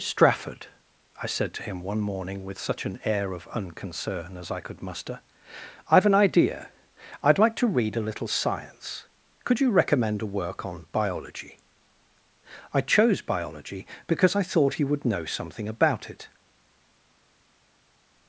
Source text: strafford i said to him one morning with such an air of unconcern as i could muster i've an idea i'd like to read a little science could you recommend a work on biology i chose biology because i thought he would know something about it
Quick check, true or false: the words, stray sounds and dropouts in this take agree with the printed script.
true